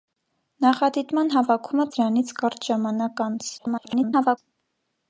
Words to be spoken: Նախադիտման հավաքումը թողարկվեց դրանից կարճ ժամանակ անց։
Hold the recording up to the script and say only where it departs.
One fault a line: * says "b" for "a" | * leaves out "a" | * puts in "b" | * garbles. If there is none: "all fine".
* leaves out "թողարկվեց"
* garbles